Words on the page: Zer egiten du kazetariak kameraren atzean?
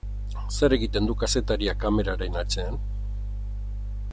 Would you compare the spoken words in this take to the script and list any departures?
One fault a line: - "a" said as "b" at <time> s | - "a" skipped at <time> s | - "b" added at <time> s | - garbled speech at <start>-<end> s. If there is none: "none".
none